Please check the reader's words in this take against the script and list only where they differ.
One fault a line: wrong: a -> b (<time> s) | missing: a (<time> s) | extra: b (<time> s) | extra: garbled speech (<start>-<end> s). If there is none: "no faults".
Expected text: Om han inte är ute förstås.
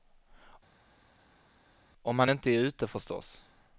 no faults